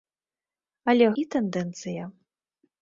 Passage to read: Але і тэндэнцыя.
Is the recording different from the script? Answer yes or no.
no